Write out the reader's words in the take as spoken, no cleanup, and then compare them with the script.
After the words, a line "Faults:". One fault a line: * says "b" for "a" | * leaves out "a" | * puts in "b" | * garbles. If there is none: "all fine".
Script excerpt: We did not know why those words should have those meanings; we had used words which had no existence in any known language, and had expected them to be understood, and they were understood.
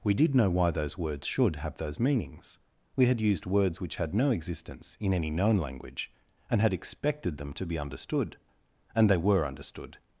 We did know why those words should have those meanings; we had used words which had no existence in any known language, and had expected them to be understood, and they were understood.
Faults:
* leaves out "not"